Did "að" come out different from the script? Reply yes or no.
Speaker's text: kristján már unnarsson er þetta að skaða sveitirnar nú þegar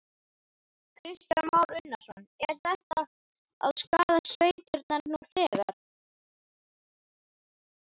no